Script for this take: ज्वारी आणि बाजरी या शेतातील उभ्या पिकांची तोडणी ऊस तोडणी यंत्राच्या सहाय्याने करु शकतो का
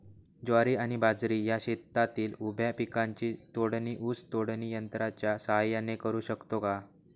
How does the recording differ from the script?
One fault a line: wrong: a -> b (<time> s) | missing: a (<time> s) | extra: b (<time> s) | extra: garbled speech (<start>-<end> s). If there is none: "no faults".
no faults